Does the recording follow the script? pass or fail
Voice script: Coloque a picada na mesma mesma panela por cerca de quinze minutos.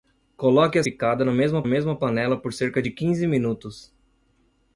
pass